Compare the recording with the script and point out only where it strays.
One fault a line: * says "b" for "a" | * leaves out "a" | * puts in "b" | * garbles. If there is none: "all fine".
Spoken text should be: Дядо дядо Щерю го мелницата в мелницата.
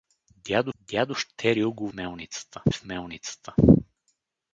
all fine